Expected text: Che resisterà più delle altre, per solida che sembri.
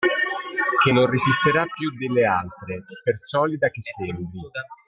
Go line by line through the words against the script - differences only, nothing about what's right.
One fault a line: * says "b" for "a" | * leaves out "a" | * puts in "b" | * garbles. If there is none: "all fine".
* puts in "non"